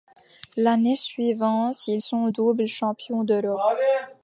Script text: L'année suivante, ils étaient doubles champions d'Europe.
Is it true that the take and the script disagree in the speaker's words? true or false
true